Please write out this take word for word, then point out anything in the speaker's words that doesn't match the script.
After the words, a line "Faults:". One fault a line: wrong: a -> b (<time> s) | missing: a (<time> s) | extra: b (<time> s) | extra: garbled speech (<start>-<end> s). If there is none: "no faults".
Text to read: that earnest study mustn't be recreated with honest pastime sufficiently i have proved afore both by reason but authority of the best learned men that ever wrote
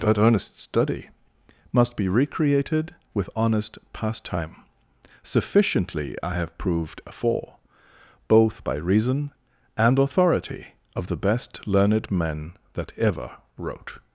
that earnest study must be recreated with honest pastime sufficiently i have proved afore both by reason and authority of the best learned men that ever wrote
Faults:
wrong: mustn't -> must (1.7 s)
wrong: but -> and (9.7 s)